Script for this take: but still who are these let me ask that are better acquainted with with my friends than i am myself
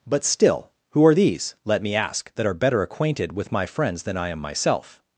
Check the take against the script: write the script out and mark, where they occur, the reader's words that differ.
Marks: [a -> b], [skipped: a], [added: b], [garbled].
but still who are these let me ask that are better acquainted with [skipped: with] my friends than i am myself